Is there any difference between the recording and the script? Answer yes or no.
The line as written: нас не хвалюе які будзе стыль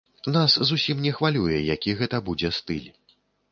yes